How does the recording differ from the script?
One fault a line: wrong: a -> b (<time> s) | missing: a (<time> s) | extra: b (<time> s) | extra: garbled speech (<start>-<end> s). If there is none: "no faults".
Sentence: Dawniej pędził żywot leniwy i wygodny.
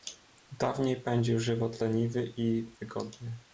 no faults